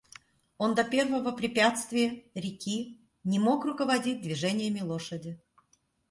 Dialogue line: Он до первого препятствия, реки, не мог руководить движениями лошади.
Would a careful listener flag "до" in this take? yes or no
no